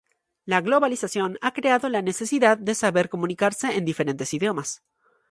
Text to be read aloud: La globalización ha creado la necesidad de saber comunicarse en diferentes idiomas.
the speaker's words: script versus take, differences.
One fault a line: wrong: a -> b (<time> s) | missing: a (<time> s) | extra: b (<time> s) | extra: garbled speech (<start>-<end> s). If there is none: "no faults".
no faults